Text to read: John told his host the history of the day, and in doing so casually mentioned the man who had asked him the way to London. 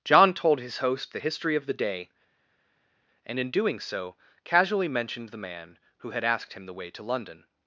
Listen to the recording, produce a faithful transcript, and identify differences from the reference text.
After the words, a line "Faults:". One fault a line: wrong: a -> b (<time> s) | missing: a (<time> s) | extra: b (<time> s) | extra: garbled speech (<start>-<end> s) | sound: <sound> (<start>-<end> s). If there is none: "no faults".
John told his host the history of the day, and in doing so casually mentioned the man who had asked him the way to London.
Faults:
no faults